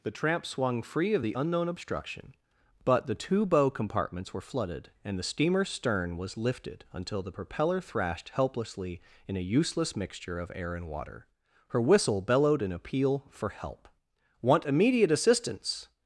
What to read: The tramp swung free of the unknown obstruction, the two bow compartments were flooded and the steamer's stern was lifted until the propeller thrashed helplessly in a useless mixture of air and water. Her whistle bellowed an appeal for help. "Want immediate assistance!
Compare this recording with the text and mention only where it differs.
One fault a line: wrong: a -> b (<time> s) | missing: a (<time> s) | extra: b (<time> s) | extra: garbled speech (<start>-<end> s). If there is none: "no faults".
extra: but (2.8 s)